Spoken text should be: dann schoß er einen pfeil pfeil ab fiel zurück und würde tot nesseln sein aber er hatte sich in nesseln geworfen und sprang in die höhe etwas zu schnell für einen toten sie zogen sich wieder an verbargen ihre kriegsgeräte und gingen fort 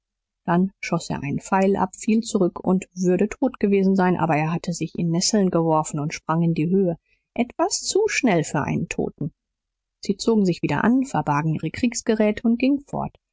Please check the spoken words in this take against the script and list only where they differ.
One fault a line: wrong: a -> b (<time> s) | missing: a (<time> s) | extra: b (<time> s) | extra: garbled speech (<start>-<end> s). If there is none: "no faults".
missing: pfeil (1.8 s)
wrong: nesseln -> gewesen (3.6 s)